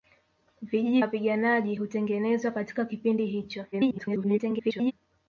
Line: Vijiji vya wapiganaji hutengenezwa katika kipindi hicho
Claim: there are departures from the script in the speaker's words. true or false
true